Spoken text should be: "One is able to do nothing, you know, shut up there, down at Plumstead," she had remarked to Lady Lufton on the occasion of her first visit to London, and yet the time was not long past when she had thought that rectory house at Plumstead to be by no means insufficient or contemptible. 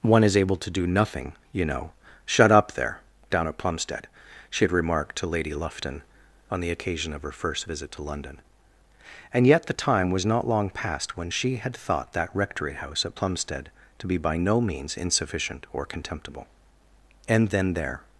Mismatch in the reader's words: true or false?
true